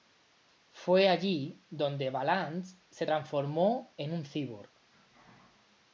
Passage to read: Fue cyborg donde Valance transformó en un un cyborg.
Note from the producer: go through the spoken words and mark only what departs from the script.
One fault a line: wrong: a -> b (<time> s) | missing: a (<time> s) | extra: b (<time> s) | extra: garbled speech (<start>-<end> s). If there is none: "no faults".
wrong: cyborg -> allí (1.1 s)
extra: se (2.9 s)
missing: un (4.2 s)